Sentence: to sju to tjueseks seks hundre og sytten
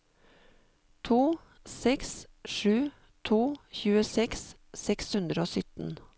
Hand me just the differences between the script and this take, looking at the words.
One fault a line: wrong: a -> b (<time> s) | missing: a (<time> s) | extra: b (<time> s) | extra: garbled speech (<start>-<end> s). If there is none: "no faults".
extra: seks (1.6 s)